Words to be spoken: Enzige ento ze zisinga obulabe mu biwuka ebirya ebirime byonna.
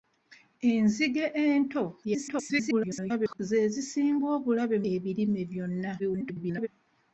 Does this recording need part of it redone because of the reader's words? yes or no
yes